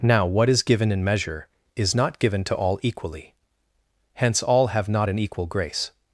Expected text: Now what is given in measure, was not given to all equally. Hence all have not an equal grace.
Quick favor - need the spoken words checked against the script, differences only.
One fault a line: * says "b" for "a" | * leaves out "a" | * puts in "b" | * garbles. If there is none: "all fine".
* says "is" for "was"